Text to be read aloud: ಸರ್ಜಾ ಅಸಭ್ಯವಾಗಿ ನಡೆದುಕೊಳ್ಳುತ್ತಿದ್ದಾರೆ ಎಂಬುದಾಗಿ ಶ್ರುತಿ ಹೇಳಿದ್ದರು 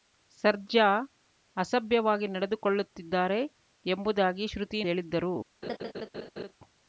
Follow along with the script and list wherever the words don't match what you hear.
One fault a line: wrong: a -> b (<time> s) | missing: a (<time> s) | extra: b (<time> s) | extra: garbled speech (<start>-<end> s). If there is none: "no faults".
no faults